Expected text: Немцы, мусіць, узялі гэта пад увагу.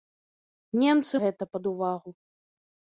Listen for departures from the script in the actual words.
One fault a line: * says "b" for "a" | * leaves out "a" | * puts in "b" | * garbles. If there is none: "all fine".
* leaves out "мусіць узялі"